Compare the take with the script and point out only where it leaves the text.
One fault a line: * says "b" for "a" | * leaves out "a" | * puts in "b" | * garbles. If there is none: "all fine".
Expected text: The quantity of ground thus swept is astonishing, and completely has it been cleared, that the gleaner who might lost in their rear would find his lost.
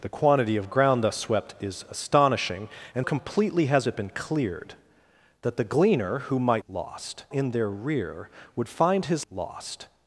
all fine